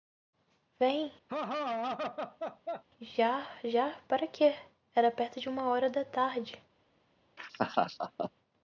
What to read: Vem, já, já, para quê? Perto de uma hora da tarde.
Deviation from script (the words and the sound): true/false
true